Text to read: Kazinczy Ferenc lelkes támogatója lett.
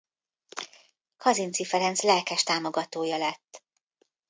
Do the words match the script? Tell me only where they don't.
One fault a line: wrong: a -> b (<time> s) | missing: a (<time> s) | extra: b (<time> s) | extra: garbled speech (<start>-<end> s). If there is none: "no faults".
no faults